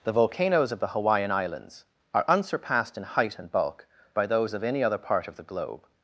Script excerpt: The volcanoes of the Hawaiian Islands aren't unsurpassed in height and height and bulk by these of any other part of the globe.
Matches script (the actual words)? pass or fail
fail